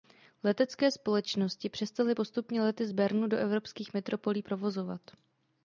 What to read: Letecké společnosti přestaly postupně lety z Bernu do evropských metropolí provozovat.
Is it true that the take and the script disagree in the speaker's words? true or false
false